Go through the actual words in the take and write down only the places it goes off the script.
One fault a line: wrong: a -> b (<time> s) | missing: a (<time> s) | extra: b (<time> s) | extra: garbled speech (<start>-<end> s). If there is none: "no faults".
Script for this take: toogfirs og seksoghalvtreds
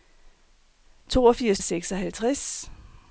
no faults